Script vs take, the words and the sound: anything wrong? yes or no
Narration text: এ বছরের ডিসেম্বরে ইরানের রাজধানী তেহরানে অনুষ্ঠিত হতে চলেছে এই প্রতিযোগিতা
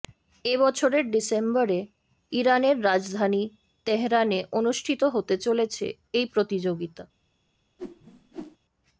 yes